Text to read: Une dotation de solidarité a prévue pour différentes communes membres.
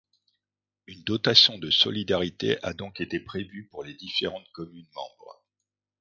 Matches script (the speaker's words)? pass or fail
fail